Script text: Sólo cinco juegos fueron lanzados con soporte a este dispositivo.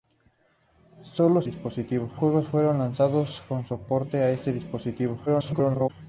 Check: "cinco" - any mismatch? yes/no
yes